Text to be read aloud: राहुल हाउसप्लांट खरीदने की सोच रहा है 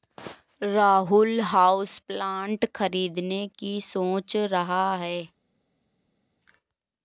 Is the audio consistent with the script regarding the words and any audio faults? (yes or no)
yes